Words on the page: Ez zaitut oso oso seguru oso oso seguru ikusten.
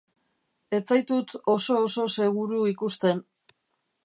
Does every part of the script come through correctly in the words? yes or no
no